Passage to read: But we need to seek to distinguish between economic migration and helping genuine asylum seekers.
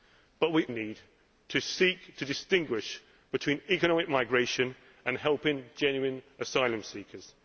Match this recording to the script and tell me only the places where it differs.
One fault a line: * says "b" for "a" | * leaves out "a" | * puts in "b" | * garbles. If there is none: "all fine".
all fine